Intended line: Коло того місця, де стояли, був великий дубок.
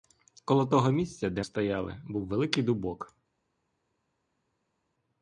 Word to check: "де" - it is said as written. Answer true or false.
true